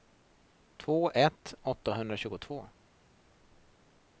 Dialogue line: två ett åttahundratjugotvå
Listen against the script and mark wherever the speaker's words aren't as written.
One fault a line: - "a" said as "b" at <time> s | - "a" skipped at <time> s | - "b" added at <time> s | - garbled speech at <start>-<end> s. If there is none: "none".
none